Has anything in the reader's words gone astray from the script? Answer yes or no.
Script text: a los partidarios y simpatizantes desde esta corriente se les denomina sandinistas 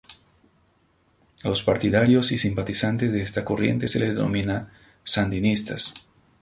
yes